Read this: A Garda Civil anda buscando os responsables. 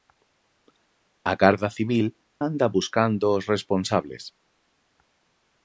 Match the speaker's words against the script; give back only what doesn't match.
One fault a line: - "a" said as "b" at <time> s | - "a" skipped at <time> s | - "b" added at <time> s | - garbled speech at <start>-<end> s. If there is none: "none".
none